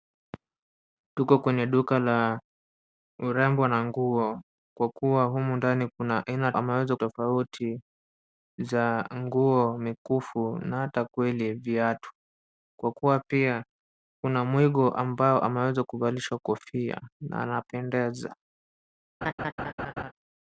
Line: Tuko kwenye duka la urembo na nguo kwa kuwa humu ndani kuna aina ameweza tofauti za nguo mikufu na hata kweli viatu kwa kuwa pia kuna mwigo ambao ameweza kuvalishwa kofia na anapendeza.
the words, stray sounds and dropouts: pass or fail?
fail